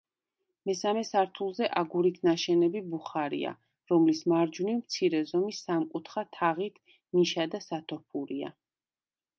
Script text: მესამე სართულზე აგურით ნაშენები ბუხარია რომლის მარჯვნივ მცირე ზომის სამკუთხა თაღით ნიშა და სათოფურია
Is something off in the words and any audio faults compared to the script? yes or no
no